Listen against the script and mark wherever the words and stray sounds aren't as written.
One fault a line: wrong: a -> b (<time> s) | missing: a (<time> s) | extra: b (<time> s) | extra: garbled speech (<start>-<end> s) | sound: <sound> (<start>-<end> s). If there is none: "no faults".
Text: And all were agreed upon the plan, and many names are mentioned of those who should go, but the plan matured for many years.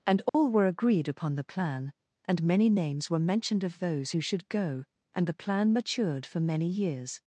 sound: dropout (0.3-0.3 s)
wrong: are -> were (3.1 s)
wrong: but -> and (5.1 s)